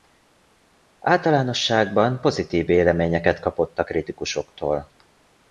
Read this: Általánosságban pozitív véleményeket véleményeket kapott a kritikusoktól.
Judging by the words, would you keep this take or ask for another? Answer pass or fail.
fail